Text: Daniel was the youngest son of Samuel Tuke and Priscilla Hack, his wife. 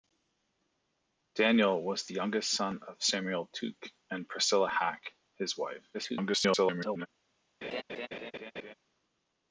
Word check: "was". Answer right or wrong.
right